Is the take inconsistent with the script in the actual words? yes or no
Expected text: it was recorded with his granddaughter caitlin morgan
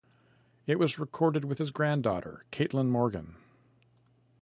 no